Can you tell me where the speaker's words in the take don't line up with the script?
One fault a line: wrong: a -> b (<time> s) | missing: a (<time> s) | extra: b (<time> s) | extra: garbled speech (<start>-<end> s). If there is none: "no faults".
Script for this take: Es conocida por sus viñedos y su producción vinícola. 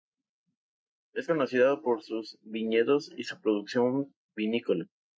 no faults